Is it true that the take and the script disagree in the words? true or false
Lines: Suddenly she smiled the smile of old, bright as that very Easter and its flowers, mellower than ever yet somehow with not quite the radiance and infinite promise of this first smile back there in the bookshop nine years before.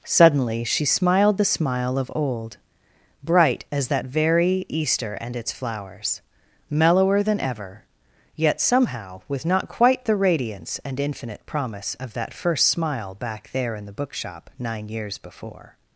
true